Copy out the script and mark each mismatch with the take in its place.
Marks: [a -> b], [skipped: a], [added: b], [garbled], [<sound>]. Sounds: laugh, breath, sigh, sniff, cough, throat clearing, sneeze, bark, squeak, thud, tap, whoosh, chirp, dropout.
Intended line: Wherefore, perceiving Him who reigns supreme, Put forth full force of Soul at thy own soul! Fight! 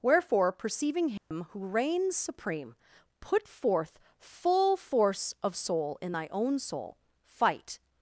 Wherefore, perceiving Him [dropout] who reigns supreme, Put forth full force of Soul [at -> in] thy own soul! Fight!